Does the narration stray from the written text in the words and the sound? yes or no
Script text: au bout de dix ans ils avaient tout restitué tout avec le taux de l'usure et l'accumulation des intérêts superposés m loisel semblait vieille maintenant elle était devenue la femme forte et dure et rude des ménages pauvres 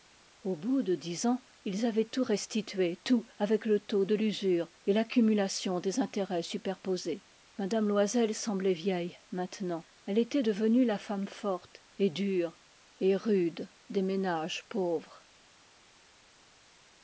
no